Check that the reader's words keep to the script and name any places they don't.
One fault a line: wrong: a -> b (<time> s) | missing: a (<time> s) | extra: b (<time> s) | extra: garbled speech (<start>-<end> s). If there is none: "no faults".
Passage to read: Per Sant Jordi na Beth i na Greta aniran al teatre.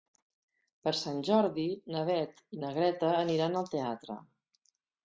no faults